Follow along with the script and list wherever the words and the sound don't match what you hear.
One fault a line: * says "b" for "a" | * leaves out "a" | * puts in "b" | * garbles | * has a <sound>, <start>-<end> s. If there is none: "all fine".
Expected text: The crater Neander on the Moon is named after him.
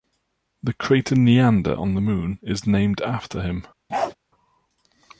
* has a bark, 3.9-4.1 s